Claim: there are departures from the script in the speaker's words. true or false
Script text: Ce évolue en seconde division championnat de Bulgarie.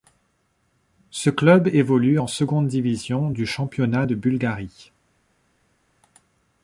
true